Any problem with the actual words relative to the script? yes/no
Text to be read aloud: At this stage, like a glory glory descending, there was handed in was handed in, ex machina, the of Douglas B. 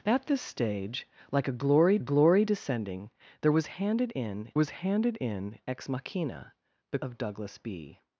no